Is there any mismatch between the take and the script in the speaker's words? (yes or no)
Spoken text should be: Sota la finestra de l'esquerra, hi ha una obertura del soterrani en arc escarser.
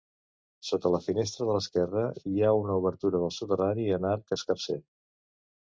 no